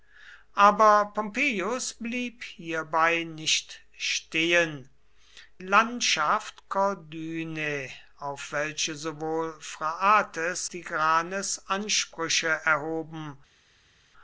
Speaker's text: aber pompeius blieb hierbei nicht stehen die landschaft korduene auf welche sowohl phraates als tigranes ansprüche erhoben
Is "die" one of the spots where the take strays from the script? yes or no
yes